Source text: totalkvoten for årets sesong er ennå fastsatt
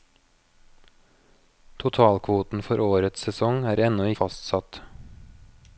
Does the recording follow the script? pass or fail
pass